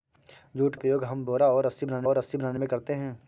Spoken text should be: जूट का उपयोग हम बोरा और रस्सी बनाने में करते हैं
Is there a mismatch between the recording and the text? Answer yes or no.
yes